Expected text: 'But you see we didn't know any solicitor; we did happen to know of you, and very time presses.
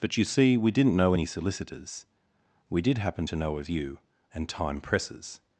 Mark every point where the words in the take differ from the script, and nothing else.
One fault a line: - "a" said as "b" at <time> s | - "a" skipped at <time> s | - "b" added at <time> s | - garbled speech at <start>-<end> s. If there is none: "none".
- "solicitor" said as "solicitors" at 1.3 s
- "very" skipped at 4.5 s